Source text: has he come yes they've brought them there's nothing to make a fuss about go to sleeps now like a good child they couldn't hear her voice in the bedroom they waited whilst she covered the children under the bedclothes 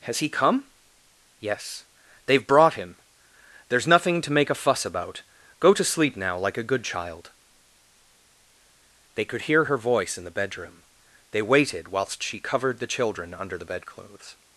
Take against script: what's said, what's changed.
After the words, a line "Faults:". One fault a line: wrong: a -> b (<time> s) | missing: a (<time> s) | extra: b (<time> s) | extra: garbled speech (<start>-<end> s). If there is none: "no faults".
has he come yes they've brought him there's nothing to make a fuss about go to sleep now like a good child they could hear her voice in the bedroom they waited whilst she covered the children under the bedclothes
Faults:
wrong: them -> him (2.7 s)
wrong: sleeps -> sleep (5.8 s)
wrong: couldn't -> could (9.3 s)